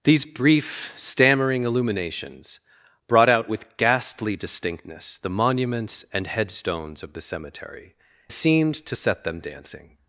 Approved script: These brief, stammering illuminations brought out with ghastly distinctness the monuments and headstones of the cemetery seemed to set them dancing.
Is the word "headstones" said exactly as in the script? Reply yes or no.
yes